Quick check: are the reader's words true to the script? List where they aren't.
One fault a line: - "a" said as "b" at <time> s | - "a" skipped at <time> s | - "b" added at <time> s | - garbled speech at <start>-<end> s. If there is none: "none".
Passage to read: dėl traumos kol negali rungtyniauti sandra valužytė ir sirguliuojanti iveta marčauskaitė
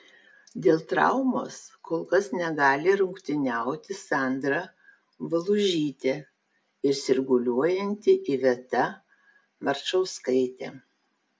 - "kas" added at 2.1 s